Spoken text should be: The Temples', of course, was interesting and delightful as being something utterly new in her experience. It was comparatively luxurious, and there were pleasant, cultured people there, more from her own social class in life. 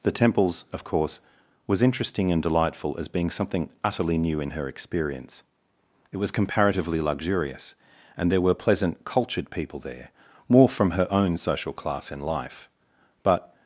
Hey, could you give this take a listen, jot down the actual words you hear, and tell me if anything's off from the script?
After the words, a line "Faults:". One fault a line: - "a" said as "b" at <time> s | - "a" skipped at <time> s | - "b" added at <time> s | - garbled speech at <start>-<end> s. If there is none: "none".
The Temples', of course, was interesting and delightful as being something utterly new in her experience. It was comparatively luxurious, and there were pleasant, cultured people there, more from her own social class in life. But
Faults:
- "But" added at 13.2 s